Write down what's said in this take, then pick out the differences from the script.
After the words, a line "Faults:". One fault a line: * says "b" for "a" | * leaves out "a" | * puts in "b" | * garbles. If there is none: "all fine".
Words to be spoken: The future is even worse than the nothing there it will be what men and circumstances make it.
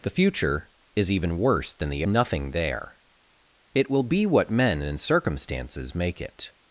The future is even worse than the nothing there it will be what men and circumstances make it.
Faults:
all fine